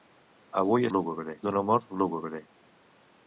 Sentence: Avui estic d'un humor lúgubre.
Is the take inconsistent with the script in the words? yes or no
yes